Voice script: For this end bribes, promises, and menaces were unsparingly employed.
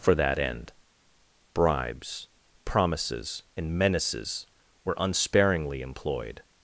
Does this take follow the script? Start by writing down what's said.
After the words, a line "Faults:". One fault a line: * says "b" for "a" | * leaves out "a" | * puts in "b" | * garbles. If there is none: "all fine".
For that end bribes, promises, and menaces were unsparingly employed.
Faults:
* says "that" for "this"